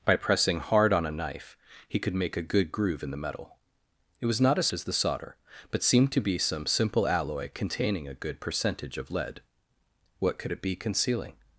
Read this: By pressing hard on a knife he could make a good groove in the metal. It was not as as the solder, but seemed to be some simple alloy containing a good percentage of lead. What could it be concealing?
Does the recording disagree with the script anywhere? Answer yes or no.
no